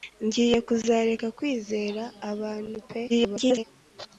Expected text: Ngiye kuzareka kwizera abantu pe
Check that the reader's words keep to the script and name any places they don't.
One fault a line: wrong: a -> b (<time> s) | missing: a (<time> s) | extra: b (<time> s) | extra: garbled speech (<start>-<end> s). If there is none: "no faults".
extra: garbled speech (3.1-3.6 s)